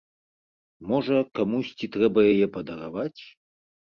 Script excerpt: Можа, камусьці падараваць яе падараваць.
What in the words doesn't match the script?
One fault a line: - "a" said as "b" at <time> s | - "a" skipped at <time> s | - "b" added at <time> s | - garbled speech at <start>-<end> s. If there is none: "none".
- "падараваць" said as "трэба" at 1.9 s